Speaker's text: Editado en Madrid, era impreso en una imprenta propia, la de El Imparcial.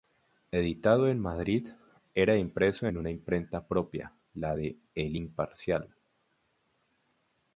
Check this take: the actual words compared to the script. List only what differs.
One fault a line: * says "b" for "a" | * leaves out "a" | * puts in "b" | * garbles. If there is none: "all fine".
all fine